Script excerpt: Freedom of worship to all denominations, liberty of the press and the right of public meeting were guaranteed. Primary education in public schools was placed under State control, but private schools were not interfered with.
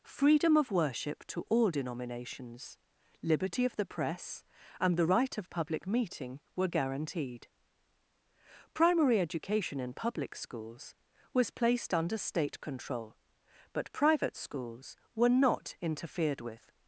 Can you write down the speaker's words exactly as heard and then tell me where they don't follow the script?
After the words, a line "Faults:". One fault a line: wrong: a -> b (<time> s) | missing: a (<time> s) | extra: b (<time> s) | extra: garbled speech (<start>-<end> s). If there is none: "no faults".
Freedom of worship to all denominations, liberty of the press and the right of public meeting were guaranteed. Primary education in public schools was placed under State control, but private schools were not interfered with.
Faults:
no faults